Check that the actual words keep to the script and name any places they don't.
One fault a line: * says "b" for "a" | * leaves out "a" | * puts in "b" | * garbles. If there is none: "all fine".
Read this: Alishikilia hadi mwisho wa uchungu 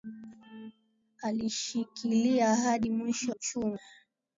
* leaves out "wa"